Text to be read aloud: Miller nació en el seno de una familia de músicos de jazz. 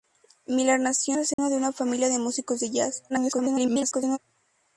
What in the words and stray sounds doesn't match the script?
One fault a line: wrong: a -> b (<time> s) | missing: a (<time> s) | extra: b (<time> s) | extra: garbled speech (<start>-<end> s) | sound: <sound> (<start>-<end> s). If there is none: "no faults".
missing: en (1.1 s)
sound: dropout (1.3-1.4 s)
extra: garbled speech (3.1-4.2 s)